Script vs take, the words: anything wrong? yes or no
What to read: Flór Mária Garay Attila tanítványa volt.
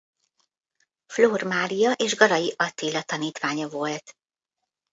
yes